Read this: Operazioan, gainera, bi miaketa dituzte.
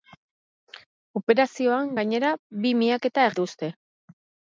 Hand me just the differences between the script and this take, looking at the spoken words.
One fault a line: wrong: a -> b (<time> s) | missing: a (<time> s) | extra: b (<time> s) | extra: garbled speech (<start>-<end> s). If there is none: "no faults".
no faults